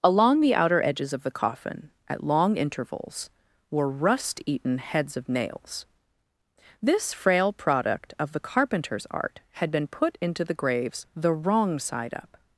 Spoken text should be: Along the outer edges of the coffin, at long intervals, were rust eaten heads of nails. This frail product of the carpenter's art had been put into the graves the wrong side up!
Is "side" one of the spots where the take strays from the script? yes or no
no